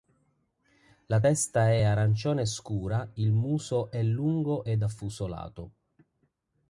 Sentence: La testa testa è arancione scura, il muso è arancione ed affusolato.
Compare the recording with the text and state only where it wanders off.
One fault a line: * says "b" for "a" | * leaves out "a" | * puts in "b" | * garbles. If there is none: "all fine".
* leaves out "testa"
* says "lungo" for "arancione"